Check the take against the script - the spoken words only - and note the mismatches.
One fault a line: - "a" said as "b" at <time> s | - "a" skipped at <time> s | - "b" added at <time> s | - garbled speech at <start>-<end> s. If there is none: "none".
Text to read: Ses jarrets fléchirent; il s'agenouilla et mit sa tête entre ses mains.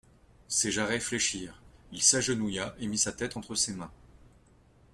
none